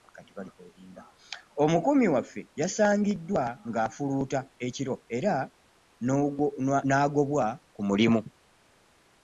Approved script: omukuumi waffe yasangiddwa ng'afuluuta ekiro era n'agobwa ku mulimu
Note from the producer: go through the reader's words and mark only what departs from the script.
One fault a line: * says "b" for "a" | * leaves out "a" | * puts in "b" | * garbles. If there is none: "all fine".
all fine